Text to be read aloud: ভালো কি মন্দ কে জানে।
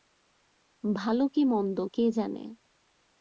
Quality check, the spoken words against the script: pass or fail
pass